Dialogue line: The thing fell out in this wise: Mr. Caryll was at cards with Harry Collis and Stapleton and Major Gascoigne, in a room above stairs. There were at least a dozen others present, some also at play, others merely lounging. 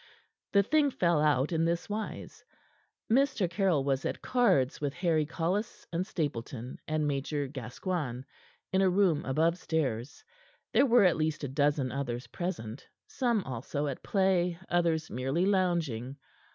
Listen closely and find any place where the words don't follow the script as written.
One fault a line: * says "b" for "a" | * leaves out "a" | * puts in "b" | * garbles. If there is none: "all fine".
all fine